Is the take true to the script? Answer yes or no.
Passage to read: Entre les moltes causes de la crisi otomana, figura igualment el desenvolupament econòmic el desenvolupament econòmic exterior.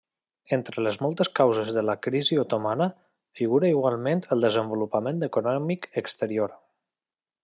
no